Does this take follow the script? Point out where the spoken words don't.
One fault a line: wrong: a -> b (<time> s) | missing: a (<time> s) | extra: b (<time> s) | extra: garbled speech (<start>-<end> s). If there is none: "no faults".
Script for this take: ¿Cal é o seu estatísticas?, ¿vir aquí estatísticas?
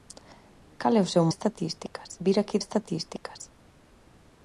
no faults